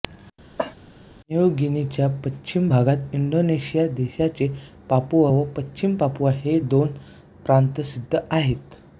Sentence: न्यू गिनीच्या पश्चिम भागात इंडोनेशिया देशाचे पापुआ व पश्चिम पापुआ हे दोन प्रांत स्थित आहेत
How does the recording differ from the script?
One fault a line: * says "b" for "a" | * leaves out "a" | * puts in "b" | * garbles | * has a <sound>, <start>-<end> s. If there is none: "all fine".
* has a cough, 0.6-0.7 s